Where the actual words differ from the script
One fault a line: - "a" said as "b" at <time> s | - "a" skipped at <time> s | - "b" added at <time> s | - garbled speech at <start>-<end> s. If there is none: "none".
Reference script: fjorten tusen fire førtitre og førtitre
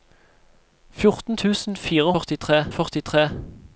none